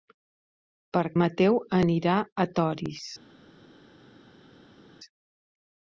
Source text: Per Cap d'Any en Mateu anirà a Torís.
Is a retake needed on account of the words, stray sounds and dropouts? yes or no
yes